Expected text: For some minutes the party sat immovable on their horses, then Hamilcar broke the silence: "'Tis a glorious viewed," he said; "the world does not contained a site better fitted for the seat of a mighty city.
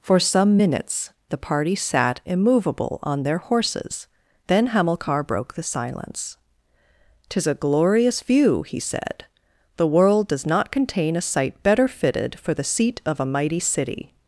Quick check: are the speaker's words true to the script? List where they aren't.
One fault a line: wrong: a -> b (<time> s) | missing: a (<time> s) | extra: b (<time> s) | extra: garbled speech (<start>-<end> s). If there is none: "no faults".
wrong: viewed -> view (8.2 s)
wrong: contained -> contain (10.7 s)